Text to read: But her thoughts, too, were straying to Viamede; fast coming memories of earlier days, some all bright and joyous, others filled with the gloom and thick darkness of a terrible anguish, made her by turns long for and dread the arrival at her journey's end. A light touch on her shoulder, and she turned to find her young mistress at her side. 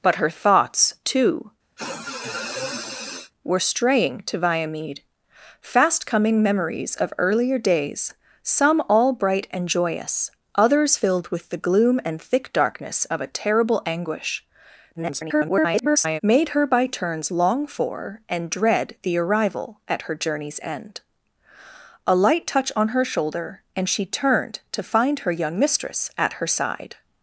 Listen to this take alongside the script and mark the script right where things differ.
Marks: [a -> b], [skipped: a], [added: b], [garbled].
But her thoughts, too, were straying to Viamede; fast coming memories of earlier days, some all bright and joyous, others filled with the gloom and thick darkness of a terrible anguish, [garbled] made her by turns long for and dread the arrival at her journey's end. A light touch on her shoulder, and she turned to find her young mistress at her side.